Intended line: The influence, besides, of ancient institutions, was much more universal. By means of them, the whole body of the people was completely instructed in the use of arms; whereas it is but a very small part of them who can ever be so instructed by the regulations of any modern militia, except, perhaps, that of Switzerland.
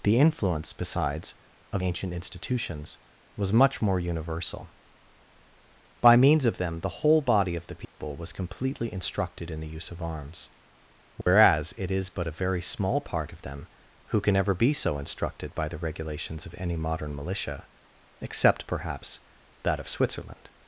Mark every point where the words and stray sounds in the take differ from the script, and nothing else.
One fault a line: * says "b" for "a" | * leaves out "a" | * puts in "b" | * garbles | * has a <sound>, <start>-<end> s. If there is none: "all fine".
* has a dropout, 7.8-8.0 s
* has a dropout, 11.2-11.3 s